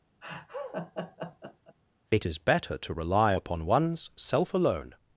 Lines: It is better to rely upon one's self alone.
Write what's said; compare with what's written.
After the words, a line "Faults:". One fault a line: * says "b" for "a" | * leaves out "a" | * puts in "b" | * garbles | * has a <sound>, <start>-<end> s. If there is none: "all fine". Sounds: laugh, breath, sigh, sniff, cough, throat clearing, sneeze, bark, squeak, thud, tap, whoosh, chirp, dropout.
It is better to rely upon one's self alone.
Faults:
* has a laugh, 0.2-1.8 s